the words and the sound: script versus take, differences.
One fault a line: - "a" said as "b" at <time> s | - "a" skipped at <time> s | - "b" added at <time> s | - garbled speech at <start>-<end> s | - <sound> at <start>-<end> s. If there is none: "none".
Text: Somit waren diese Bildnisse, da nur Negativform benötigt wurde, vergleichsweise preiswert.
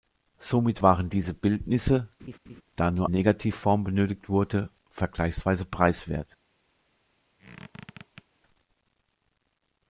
- laugh at 2.2-2.6 s
- squeak at 7.4-8.2 s